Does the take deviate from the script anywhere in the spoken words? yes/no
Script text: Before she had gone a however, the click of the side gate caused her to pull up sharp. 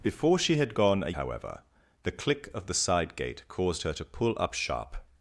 no